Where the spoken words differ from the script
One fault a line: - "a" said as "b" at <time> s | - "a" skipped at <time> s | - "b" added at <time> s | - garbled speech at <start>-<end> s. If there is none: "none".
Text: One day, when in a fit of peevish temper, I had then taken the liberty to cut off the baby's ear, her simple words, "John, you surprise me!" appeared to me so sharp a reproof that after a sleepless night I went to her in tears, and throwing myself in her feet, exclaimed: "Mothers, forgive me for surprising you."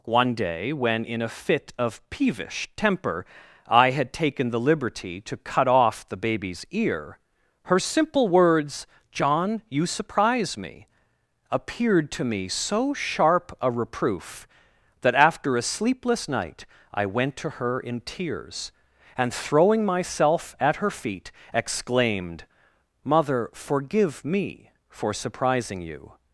- "then" skipped at 4.1 s
- "in" said as "at" at 20.6 s
- "Mothers" said as "Mother" at 23.0 s